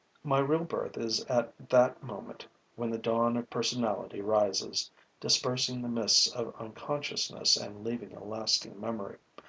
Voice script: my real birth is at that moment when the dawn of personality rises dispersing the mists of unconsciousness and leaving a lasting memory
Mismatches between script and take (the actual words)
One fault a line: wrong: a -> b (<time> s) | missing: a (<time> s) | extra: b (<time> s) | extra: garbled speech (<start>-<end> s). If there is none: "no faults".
no faults